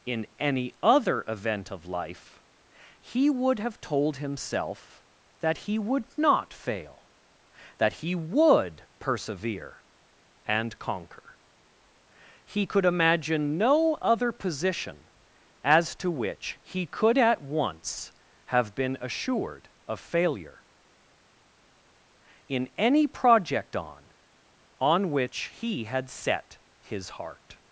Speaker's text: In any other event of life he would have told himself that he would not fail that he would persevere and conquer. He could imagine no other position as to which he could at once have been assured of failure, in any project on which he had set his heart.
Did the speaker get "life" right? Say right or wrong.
right